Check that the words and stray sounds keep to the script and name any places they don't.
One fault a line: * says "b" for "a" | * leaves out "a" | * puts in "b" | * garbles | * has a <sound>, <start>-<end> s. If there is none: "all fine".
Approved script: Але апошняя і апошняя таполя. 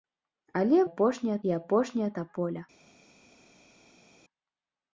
all fine